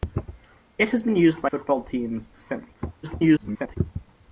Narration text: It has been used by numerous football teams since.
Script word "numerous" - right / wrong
wrong